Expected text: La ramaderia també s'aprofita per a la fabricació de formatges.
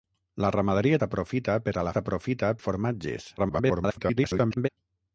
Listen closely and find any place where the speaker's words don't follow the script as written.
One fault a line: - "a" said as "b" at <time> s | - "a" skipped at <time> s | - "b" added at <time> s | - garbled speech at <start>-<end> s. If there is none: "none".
- "també" skipped at 1.0 s
- "fabricació" said as "s'aprofita" at 1.9 s
- garbled speech at 3.4-4.7 s